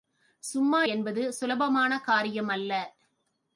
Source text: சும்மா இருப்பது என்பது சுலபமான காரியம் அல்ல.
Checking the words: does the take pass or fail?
fail